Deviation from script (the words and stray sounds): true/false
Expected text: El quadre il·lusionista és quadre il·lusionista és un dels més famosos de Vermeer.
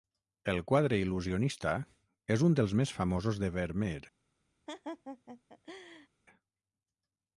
true